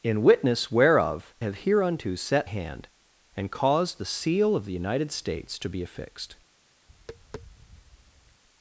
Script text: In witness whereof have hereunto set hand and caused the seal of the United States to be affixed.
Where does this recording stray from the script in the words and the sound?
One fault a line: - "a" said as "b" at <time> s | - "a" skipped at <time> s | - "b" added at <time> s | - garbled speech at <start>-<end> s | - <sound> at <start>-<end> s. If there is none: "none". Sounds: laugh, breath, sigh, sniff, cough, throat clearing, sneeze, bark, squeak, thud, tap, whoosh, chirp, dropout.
- tap at 6.9-8.4 s